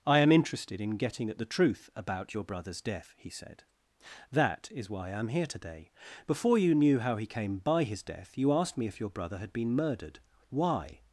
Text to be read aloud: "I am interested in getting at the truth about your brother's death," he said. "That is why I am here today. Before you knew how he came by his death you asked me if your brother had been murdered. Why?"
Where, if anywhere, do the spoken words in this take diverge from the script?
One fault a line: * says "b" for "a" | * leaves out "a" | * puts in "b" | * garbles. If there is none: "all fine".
all fine